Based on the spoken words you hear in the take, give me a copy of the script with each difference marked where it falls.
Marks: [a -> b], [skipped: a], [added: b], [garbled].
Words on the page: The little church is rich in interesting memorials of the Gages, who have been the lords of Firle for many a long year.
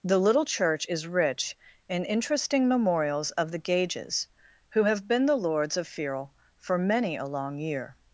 The little church is rich in interesting memorials of the Gages, who have been the lords of Firle for many a long year.